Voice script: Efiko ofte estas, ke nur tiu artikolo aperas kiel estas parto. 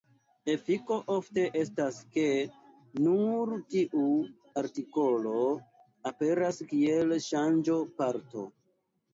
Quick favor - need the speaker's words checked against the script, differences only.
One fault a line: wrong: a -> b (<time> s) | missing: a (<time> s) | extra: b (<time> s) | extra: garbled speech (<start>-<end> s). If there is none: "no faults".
wrong: estas -> ŝanĝo (7.3 s)